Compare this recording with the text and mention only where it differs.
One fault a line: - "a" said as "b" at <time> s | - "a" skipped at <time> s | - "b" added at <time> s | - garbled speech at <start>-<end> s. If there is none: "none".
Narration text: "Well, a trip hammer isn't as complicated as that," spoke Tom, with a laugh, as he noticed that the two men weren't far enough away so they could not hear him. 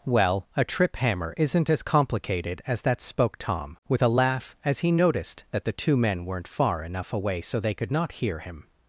none